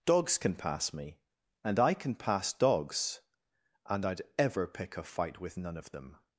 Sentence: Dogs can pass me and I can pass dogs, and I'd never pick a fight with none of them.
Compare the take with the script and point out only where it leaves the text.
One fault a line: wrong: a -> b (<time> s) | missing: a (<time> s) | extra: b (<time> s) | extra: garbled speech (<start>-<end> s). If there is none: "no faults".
wrong: never -> ever (4.4 s)